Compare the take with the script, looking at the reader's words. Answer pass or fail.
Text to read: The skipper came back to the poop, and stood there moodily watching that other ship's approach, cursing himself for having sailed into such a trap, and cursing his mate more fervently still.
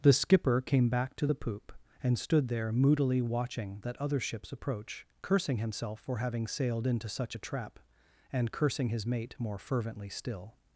pass